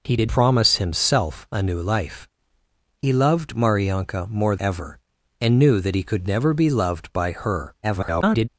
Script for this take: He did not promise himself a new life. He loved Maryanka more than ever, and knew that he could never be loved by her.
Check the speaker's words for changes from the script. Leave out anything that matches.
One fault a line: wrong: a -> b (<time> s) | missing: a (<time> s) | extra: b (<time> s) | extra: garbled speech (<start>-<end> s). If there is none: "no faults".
missing: not (0.3 s)
missing: than (4.6 s)
extra: garbled speech (7.8-8.5 s)